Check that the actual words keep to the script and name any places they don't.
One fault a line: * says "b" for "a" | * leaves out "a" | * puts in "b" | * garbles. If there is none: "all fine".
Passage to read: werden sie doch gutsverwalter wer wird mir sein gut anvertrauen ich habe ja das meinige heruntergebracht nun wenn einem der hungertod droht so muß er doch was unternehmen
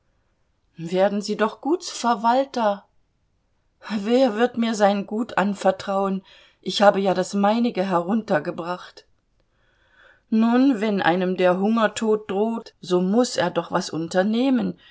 all fine